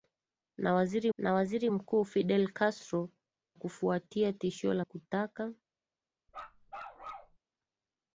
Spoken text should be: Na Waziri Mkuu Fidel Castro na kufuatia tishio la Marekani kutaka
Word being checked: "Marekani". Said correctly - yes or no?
no